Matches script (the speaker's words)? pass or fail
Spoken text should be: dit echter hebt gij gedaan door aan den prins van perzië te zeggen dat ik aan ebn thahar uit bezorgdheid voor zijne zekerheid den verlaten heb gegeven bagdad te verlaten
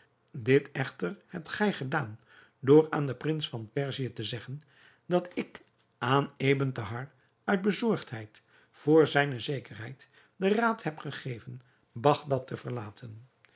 fail